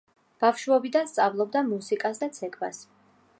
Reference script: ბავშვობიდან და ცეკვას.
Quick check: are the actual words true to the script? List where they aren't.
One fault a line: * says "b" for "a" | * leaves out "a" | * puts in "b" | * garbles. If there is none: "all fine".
* puts in "სწავლობდა მუსიკას"